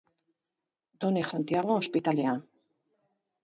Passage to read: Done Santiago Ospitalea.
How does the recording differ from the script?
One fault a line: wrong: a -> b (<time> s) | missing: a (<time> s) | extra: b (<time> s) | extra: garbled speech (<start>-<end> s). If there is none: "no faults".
no faults